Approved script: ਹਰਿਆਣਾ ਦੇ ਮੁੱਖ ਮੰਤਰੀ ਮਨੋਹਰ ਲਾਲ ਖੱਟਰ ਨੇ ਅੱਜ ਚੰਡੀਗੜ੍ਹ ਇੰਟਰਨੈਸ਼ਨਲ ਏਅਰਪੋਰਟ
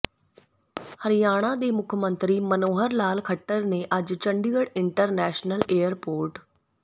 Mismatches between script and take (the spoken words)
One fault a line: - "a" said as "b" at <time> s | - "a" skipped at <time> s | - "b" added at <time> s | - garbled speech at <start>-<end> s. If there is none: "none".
none